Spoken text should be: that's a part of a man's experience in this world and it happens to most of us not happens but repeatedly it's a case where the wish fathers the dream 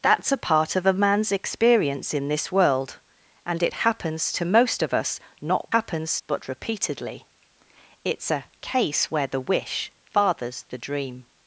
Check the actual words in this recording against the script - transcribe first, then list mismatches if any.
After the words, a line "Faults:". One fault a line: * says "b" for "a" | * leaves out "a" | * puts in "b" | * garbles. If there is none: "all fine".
that's a part of a man's experience in this world and it happens to most of us not happens but repeatedly it's a case where the wish fathers the dream
Faults:
all fine